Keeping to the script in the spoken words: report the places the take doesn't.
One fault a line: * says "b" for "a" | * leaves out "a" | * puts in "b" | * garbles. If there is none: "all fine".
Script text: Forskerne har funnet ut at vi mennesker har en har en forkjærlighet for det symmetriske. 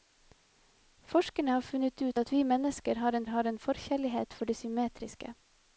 all fine